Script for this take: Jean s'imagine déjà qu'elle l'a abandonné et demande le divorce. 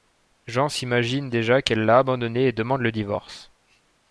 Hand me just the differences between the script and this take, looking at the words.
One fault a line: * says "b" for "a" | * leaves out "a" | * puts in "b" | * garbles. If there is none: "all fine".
all fine